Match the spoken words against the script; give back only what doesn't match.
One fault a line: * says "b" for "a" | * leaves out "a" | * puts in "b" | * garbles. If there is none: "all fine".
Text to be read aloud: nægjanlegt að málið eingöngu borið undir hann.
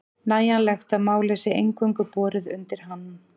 * puts in "sé"